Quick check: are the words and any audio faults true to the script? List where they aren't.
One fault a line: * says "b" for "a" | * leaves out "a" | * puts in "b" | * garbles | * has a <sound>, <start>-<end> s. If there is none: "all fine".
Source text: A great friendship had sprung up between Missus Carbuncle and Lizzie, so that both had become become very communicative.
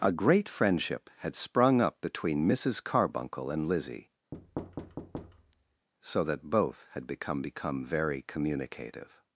* has a thud, 4.3-5.9 s